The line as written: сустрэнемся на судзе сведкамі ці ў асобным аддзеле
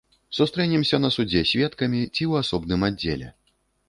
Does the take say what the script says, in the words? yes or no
yes